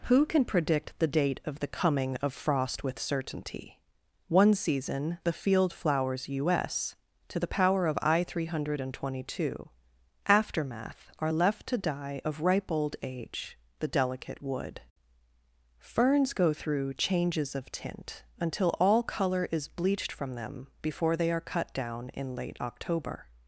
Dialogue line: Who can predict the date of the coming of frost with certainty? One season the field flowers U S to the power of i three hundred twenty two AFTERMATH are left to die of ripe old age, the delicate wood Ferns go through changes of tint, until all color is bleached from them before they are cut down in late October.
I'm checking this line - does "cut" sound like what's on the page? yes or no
yes